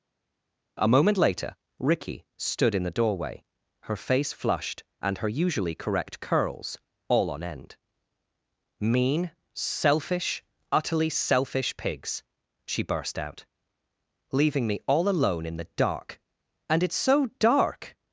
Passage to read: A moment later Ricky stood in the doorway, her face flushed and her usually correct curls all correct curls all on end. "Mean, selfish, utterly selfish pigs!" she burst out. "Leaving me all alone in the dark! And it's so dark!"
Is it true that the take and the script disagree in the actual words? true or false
true